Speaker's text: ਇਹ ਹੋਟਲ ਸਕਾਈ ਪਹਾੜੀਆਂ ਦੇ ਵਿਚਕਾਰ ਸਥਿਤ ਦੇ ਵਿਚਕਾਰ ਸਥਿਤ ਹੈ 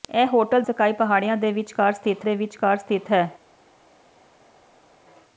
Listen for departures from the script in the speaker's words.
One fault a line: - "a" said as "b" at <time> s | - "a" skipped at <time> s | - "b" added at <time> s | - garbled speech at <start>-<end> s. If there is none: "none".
none